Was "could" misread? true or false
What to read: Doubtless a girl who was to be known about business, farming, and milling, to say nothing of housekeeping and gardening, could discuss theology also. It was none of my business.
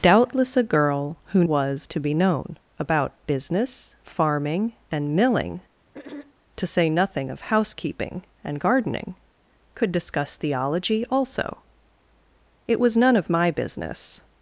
false